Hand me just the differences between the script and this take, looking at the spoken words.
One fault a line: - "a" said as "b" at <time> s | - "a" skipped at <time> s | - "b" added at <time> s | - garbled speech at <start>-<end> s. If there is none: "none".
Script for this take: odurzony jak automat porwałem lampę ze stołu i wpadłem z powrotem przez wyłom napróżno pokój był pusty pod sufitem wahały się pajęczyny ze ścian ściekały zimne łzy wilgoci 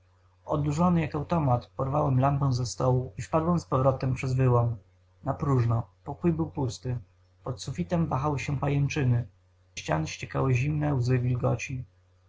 - "ze" skipped at 9.3 s